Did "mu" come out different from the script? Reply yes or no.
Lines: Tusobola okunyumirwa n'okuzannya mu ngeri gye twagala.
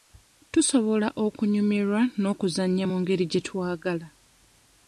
no